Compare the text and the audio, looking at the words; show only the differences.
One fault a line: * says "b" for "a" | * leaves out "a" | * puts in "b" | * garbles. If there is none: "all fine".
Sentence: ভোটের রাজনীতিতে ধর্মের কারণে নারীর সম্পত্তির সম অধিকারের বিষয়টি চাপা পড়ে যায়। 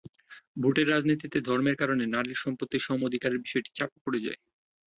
all fine